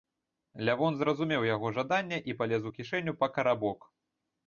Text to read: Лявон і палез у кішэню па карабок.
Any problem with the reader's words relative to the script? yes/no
yes